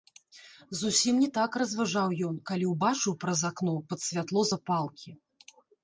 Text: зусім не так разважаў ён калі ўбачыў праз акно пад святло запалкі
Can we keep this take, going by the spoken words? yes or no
yes